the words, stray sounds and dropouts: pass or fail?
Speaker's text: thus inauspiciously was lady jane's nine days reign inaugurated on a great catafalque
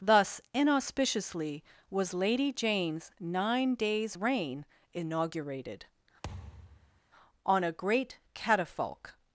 fail